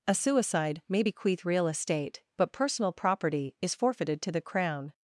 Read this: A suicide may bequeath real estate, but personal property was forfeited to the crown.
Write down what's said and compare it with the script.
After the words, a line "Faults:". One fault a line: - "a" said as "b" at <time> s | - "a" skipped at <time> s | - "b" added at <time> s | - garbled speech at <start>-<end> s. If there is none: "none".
A suicide may bequeath real estate, but personal property is forfeited to the crown.
Faults:
- "was" said as "is" at 3.6 s